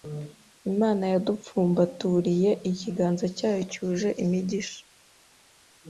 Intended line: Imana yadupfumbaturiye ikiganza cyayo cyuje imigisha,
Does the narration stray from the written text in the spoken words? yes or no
no